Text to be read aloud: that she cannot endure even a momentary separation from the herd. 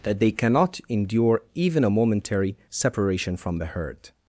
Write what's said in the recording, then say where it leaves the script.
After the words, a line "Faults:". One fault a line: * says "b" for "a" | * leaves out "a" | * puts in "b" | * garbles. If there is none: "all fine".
that they cannot endure even a momentary separation from the herd.
Faults:
* says "they" for "she"